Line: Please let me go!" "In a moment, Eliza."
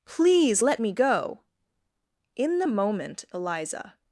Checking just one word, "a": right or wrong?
wrong